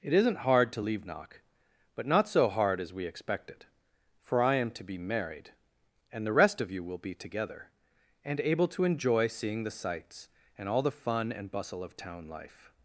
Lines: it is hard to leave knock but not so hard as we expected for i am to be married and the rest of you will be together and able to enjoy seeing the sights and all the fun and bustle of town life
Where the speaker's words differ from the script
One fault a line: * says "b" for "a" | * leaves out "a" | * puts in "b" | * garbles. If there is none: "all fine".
* says "isn't" for "is"